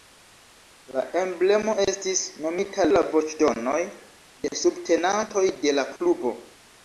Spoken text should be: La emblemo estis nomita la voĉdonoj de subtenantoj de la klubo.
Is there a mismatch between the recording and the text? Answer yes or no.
no